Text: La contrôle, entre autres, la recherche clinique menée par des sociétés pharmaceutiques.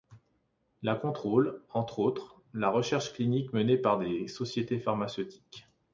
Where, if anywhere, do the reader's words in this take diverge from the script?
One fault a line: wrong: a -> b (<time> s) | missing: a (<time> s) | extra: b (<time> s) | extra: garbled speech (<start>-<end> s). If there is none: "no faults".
no faults